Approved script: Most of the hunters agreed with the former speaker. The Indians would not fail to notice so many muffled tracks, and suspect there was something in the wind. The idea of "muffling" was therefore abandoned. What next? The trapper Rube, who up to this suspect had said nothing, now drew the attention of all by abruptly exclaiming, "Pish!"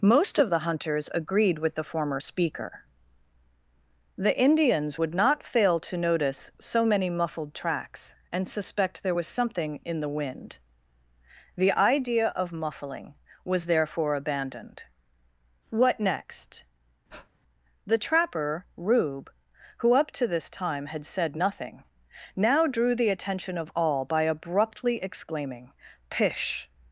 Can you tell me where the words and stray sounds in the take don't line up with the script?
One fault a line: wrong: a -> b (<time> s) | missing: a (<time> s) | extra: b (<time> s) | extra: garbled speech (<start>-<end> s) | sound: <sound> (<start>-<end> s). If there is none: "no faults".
sound: breath (17.1-17.3 s)
wrong: suspect -> time (20.5 s)